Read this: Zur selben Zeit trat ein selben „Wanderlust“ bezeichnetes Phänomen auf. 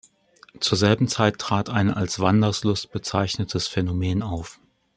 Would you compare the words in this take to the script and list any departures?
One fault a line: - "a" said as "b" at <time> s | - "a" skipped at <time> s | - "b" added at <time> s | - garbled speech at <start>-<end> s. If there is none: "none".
- "selben" said as "als" at 1.9 s